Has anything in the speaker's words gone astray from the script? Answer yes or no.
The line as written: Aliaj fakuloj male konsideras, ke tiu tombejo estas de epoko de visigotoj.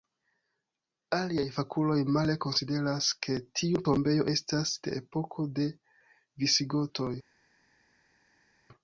no